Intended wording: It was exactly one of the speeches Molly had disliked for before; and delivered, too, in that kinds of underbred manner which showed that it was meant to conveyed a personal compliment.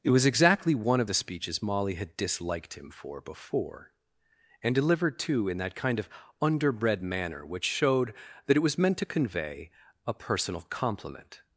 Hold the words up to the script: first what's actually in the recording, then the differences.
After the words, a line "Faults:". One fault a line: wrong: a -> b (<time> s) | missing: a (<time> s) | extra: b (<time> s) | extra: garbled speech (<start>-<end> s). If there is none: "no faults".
It was exactly one of the speeches Molly had disliked him for before; and delivered, too, in that kind of underbred manner which showed that it was meant to convey a personal compliment.
Faults:
extra: him (2.7 s)
wrong: kinds -> kind (5.8 s)
wrong: conveyed -> convey (9.1 s)